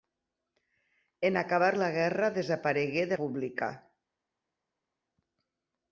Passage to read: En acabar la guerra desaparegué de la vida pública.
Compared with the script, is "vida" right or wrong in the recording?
wrong